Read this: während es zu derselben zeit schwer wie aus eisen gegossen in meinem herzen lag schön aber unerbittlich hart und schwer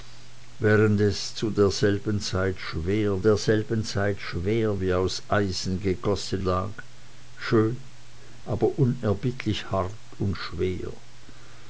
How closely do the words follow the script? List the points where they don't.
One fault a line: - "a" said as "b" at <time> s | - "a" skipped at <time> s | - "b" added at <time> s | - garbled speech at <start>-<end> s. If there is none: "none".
- "derselben zeit schwer" added at 3.2 s
- "in meinem herzen" skipped at 6.4 s